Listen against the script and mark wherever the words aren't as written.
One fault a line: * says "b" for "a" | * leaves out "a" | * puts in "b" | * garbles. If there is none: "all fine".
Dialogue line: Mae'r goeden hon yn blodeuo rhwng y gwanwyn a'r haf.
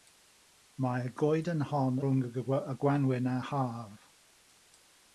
* leaves out "yn blodeuo"